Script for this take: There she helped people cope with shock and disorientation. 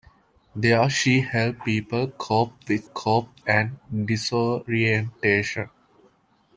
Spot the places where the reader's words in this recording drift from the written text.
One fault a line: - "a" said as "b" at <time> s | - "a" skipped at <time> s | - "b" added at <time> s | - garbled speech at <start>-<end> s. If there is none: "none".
- "shock" said as "cope" at 2.8 s